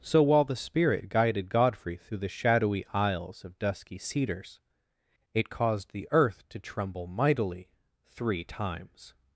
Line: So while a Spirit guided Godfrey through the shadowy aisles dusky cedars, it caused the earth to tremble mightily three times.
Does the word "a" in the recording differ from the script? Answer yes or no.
yes